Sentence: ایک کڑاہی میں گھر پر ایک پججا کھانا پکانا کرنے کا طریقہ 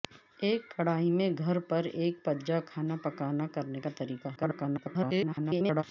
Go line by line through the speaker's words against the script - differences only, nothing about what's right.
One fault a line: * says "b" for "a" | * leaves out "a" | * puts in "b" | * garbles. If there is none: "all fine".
* garbles